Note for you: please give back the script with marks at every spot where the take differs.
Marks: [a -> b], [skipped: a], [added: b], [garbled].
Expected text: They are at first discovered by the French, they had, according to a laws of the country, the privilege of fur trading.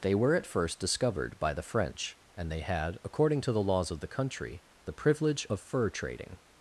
They [are -> were] at first discovered by the French, [added: and] they had, according to [a -> the] laws of the country, the privilege of fur trading.